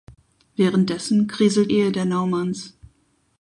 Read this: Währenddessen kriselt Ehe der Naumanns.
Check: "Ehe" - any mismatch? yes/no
no